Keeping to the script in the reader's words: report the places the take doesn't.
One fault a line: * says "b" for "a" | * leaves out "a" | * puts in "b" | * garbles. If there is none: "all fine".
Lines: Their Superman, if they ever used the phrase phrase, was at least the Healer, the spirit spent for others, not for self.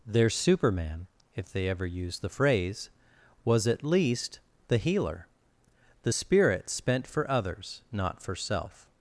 * leaves out "phrase"